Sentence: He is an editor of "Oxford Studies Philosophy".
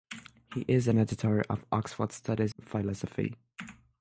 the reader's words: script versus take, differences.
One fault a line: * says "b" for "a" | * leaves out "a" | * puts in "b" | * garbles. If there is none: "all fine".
all fine